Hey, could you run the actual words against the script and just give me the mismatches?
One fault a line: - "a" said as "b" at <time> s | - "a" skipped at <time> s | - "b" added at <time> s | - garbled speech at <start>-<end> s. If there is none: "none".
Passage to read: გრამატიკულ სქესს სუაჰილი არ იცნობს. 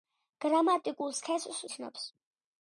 - "სუაჰილი არ" skipped at 1.6 s